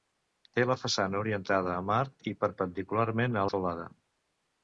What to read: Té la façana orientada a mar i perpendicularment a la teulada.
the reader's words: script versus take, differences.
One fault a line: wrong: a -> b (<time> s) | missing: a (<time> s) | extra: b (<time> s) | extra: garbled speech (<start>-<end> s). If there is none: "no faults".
no faults